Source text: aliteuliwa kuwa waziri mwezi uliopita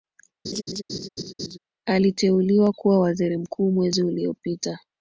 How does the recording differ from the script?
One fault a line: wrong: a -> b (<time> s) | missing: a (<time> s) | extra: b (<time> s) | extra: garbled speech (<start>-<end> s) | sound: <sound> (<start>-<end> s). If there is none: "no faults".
sound: laugh (0.4-1.6 s)
extra: mkuu (3.4 s)